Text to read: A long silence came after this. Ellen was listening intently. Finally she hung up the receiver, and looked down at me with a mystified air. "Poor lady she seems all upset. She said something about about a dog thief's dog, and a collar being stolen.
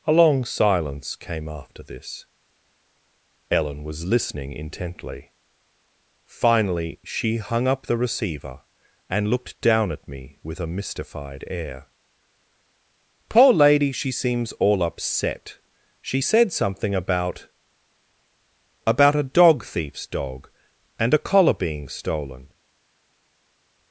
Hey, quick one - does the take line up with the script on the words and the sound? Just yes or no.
yes